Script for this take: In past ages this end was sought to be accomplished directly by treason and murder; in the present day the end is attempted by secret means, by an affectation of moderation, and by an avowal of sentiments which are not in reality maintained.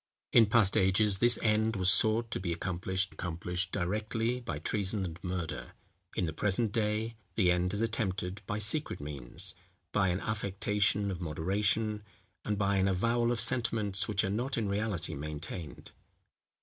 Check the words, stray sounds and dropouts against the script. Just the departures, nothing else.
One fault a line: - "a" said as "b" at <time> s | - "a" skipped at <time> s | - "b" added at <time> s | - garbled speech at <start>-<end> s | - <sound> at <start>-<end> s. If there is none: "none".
- "accomplished" added at 3.1 s